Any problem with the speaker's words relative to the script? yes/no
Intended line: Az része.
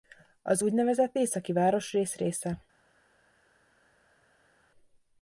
yes